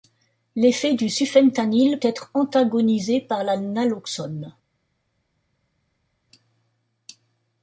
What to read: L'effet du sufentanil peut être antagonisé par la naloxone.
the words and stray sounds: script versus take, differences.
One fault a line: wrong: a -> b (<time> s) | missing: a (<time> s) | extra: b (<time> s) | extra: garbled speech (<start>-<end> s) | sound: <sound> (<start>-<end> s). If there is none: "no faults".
missing: peut (2.0 s)